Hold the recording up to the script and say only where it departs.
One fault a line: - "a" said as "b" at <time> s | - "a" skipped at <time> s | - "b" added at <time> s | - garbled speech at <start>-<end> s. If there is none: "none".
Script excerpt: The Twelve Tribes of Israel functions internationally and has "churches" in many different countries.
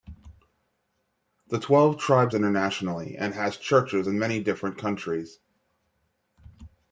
- "of Israel functions" skipped at 2.4 s